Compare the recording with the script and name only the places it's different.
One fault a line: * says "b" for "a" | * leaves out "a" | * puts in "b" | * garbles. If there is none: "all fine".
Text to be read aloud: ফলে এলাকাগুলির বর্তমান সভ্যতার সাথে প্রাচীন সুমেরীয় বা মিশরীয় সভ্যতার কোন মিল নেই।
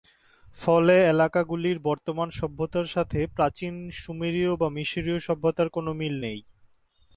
all fine